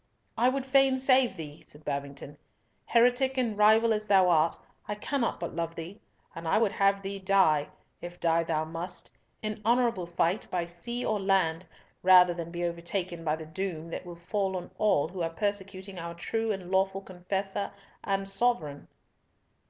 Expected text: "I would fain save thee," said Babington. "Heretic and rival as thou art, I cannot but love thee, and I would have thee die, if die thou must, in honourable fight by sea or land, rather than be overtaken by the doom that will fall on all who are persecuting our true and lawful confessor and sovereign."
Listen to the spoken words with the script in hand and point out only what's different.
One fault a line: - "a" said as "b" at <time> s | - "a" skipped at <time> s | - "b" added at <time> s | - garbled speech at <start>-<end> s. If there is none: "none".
none